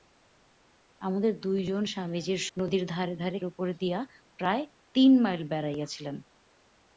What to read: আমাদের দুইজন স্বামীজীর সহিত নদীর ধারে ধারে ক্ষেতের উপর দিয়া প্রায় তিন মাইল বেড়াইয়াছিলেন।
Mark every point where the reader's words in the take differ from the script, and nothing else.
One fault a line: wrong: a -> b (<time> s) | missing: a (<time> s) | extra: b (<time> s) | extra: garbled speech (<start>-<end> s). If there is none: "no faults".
missing: সহিত (2.4 s)
missing: ক্ষেতের (3.4 s)